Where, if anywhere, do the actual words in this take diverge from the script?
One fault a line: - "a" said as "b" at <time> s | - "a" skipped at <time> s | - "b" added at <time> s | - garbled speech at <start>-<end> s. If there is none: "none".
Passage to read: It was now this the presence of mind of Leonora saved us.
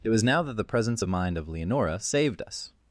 - "this" said as "that" at 0.4 s